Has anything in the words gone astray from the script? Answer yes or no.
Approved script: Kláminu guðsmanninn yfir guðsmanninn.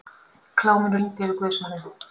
yes